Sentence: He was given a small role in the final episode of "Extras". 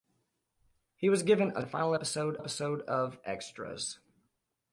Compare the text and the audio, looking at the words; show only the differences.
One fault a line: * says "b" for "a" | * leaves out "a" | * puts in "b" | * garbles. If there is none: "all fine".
* leaves out "small role in"
* puts in "episode"